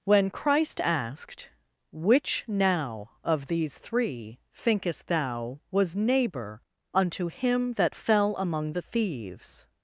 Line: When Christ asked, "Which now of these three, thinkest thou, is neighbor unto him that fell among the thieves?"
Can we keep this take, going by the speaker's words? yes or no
no